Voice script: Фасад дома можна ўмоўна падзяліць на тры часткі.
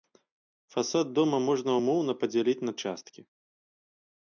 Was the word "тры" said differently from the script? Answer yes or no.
yes